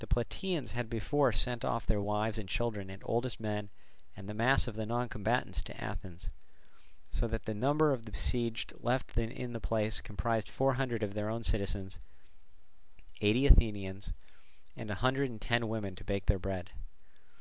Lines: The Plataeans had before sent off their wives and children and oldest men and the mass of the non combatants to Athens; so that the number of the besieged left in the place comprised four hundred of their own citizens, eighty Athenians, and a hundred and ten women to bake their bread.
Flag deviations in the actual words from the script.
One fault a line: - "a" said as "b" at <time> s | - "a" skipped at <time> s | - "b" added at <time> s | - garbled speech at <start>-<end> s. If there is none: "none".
none